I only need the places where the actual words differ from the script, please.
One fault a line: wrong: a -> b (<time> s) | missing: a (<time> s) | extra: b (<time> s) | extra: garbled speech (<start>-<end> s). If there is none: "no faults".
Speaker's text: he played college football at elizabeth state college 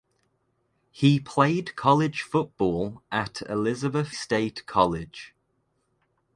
no faults